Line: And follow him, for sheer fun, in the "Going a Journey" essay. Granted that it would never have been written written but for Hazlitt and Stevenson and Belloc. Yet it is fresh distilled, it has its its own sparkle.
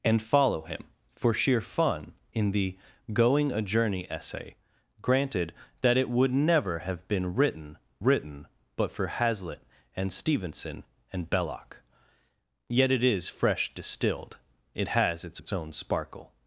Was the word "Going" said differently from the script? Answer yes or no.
no